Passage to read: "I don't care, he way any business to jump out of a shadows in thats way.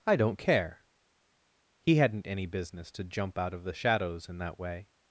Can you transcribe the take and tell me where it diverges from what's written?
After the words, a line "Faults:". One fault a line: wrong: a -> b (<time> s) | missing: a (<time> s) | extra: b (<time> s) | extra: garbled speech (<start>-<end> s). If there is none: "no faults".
"I don't care, he hadn't any business to jump out of the shadows in that way.
Faults:
wrong: way -> hadn't (1.9 s)
wrong: a -> the (3.6 s)
wrong: thats -> that (4.4 s)